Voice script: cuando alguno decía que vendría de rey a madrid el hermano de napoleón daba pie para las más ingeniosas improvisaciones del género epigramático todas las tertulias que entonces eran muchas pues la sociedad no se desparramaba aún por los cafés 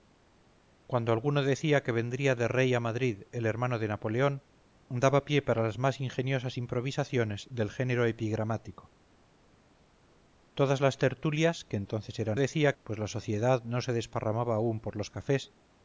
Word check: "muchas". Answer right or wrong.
wrong